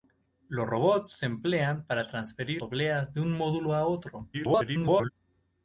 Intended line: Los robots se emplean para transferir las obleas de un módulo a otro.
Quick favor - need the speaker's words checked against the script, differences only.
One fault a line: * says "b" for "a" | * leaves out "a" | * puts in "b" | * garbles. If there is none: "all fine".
* leaves out "las"
* garbles